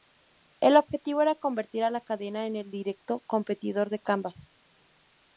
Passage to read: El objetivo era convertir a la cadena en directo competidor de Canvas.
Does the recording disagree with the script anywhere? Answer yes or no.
yes